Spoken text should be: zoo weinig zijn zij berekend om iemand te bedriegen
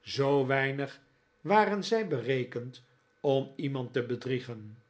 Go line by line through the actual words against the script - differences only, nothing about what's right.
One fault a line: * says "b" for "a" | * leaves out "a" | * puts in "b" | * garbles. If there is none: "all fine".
* says "waren" for "zijn"